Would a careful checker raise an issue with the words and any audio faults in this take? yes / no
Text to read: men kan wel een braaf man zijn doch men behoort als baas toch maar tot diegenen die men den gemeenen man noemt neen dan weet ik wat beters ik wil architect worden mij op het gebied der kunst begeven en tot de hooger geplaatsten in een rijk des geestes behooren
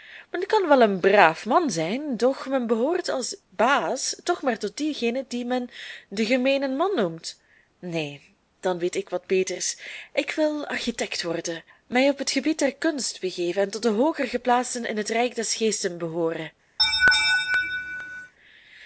yes